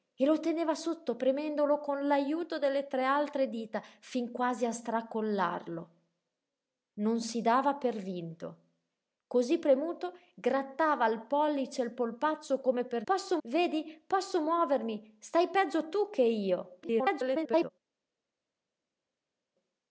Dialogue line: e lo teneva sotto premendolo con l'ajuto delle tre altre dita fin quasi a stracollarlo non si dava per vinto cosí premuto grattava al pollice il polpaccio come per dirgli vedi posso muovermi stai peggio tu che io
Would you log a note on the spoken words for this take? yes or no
yes